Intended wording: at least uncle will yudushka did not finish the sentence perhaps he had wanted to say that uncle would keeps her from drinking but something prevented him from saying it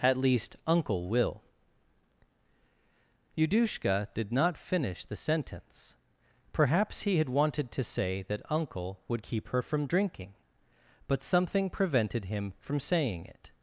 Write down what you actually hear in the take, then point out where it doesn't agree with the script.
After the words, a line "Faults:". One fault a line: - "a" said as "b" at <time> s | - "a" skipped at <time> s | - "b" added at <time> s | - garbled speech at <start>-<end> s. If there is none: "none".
at least uncle will yudushka did not finish the sentence perhaps he had wanted to say that uncle would keep her from drinking but something prevented him from saying it
Faults:
- "keeps" said as "keep" at 9.2 s